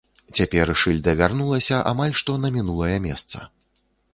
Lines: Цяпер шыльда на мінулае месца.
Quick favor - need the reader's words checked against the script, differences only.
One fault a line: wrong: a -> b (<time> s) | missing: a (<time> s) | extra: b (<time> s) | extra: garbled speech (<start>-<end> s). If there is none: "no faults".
extra: вярнулася амаль што (1.2 s)